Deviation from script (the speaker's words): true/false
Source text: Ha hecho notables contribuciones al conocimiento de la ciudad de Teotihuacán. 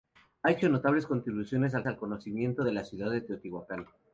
true